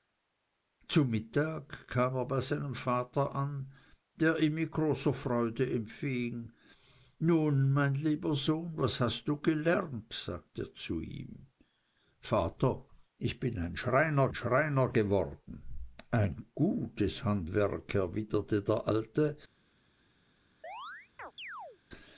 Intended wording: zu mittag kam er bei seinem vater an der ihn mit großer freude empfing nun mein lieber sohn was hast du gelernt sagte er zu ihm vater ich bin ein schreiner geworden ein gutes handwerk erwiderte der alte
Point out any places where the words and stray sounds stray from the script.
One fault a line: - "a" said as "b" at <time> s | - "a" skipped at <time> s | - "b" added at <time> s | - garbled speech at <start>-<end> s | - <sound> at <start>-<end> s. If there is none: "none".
- "schreiner" added at 14.3 s
- chirp at 20.6-21.8 s